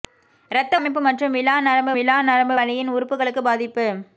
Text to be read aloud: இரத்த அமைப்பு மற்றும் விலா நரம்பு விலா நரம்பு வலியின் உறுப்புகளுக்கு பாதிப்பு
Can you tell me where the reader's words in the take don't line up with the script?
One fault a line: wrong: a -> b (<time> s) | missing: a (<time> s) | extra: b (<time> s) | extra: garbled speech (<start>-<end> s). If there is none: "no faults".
no faults